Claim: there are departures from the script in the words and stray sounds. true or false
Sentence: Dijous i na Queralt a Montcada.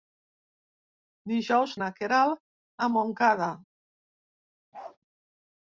true